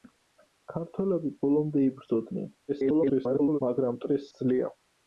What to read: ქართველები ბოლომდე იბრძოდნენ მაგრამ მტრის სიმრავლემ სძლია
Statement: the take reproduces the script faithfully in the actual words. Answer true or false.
false